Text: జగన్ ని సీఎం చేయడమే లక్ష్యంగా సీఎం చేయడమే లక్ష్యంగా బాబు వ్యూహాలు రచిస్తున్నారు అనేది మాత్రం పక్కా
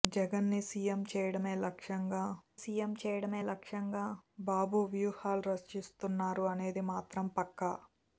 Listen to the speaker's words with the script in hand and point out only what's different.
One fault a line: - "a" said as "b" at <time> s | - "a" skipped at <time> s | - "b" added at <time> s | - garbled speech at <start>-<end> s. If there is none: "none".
none